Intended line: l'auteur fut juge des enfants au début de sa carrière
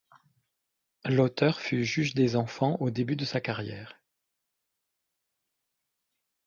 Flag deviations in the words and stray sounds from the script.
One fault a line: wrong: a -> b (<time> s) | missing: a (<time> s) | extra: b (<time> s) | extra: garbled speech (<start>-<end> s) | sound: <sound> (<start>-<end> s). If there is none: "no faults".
no faults